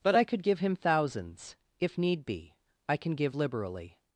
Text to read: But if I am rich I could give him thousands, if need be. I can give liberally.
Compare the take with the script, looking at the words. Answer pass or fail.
fail